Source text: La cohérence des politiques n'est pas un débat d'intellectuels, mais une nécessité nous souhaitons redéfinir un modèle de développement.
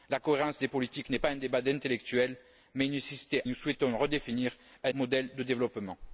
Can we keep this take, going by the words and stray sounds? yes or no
yes